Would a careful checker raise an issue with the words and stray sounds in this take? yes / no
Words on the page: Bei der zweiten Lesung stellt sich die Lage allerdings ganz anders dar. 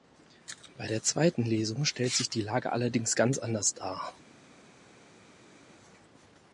no